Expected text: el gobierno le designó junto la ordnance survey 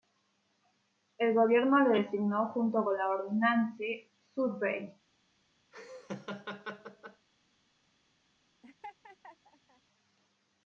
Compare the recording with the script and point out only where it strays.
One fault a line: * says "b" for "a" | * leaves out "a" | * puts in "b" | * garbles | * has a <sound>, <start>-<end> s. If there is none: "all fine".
* puts in "con"
* has a laugh, 5.7-7.3 s
* has a laugh, 8.6-9.8 s